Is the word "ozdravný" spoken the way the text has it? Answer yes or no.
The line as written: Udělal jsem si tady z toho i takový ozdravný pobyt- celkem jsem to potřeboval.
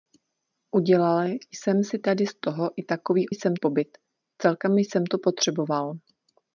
no